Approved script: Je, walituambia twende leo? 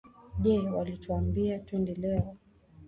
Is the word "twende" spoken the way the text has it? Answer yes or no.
yes